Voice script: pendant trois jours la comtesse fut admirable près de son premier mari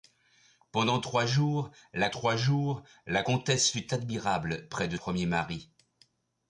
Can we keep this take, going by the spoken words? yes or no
no